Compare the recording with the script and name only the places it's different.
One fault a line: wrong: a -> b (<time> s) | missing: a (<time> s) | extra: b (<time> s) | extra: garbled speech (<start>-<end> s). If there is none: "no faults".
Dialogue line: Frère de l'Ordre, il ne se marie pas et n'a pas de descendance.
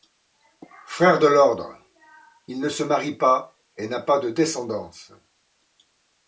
no faults